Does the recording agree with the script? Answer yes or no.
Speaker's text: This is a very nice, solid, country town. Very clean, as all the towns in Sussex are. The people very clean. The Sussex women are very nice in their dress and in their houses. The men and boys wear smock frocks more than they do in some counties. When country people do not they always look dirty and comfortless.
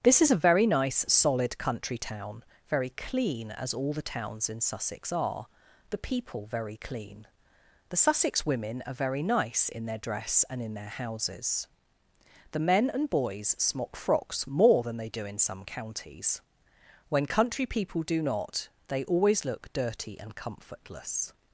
no